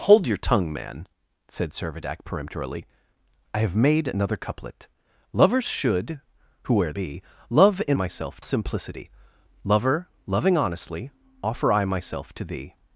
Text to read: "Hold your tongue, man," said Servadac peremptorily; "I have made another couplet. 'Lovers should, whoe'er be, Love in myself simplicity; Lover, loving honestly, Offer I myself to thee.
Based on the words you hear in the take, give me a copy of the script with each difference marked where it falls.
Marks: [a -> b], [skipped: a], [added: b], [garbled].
"Hold your tongue, man," said Servadac peremptorily; "I have made another couplet. 'Lovers should, whoe'er be, Love in myself simplicity; Lover, loving honestly, Offer I myself to thee.